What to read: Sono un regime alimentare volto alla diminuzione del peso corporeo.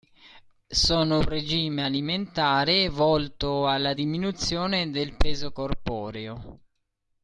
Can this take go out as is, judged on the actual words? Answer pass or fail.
pass